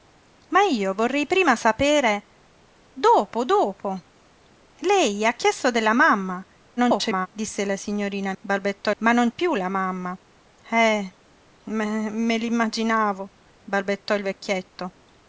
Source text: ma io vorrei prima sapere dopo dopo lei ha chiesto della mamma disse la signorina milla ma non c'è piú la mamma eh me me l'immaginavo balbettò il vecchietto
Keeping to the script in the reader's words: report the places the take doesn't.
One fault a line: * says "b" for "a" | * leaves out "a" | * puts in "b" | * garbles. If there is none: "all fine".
* garbles
* says "balbettò" for "milla"
* leaves out "c'è"